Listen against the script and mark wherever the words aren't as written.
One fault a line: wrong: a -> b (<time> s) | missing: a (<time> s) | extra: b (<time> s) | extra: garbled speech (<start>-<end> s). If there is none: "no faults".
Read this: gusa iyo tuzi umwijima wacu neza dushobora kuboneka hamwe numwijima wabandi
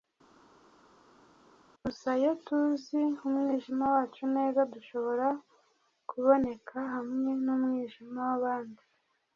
no faults